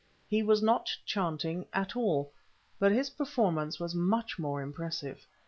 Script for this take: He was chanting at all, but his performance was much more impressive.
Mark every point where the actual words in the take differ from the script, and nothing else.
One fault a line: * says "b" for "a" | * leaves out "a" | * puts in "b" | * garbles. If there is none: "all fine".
* puts in "not"